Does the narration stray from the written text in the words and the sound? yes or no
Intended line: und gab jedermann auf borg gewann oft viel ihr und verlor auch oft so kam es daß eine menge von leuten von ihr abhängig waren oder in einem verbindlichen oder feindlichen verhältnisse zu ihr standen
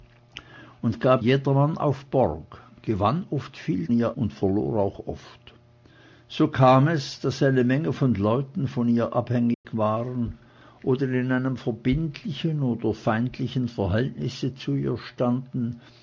yes